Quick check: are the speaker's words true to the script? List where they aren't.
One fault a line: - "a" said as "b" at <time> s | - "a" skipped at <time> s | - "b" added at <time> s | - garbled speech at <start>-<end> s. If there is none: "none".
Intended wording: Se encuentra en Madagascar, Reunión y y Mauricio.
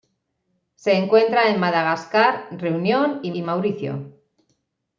none